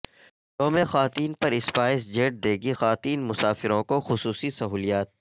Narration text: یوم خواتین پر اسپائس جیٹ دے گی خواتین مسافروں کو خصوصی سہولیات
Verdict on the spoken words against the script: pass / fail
pass